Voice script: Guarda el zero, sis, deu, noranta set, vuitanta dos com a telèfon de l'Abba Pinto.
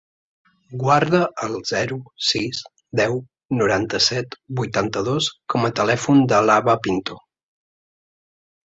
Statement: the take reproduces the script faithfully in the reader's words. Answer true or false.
true